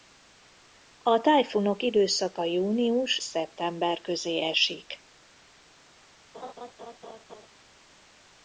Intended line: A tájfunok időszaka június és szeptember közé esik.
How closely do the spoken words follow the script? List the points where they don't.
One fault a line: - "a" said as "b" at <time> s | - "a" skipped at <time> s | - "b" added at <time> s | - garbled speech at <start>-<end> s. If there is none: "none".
- "és" skipped at 3.2 s